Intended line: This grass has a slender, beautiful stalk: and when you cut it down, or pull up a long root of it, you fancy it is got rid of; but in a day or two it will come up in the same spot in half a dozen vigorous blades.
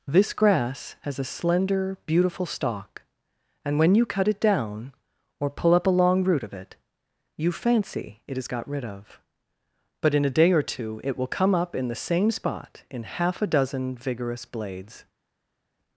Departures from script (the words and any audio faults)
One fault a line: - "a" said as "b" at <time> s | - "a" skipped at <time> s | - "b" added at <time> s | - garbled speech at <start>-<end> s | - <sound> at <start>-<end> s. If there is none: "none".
none